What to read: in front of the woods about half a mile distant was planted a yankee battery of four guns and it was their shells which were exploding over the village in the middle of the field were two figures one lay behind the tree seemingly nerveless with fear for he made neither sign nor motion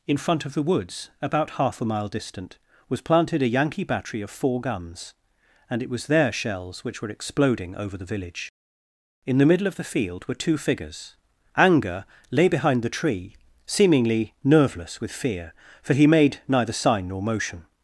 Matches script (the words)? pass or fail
fail